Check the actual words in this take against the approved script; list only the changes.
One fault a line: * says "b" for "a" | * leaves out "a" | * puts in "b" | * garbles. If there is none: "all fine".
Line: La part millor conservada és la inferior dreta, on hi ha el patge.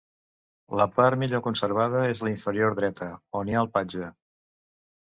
all fine